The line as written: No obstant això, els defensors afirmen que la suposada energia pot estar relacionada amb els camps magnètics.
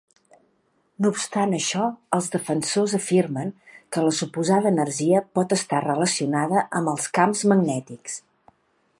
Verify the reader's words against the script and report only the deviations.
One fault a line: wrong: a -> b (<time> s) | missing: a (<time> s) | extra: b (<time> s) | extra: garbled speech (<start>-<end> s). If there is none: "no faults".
no faults